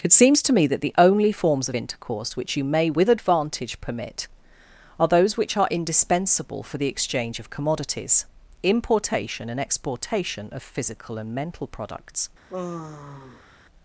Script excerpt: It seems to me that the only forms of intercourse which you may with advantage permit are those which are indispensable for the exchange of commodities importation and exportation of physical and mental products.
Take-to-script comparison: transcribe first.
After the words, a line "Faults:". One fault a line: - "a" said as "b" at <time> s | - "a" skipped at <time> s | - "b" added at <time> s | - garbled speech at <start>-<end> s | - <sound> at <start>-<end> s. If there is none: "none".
It seems to me that the only forms of intercourse which you may with advantage permit are those which are indispensable for the exchange of commodities importation and exportation of physical and mental products.
Faults:
- sigh at 12.5-13.6 s